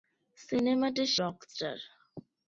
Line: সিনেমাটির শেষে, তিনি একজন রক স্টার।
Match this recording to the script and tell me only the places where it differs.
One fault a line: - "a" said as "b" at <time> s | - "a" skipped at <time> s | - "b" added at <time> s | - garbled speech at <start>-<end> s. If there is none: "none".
- "শেষে তিনি একজন" skipped at 1.1 s